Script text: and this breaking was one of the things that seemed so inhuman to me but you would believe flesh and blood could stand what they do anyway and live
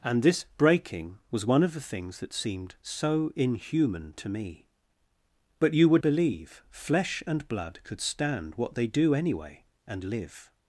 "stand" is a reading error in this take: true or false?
false